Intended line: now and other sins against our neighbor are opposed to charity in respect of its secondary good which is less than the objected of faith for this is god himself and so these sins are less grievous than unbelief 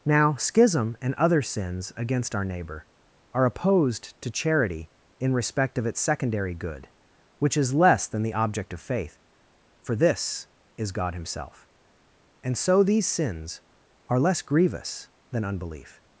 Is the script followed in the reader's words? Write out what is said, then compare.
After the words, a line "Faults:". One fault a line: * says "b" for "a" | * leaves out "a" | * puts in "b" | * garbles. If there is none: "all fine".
now schism and other sins against our neighbor are opposed to charity in respect of its secondary good which is less than the object of faith for this is god himself and so these sins are less grievous than unbelief
Faults:
* puts in "schism"
* says "object" for "objected"